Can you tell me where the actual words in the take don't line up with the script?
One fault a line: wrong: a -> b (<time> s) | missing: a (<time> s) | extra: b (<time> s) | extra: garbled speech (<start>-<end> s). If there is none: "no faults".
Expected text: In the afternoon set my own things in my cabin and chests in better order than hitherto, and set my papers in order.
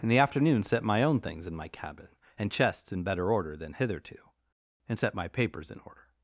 no faults